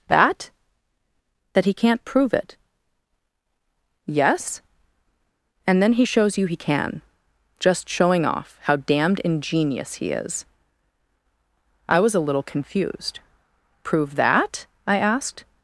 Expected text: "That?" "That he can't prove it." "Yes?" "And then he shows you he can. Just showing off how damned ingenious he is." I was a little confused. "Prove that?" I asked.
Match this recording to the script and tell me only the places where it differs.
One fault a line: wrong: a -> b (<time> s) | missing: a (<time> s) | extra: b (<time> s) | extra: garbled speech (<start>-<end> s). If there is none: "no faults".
no faults